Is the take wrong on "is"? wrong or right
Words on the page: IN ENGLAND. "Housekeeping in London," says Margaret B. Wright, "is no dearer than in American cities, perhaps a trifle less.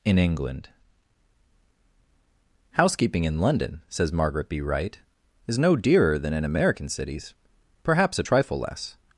right